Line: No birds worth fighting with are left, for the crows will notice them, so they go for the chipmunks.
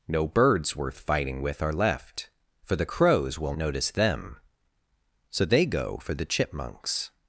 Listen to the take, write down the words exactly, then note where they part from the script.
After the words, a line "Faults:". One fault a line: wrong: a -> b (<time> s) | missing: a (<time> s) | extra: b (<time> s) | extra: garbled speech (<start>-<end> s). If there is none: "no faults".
No birds worth fighting with are left, for the crows will notice them, so they go for the chipmunks.
Faults:
no faults